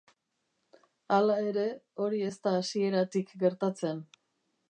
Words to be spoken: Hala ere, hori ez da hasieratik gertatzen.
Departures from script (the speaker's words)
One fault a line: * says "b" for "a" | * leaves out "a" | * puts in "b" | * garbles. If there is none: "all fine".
all fine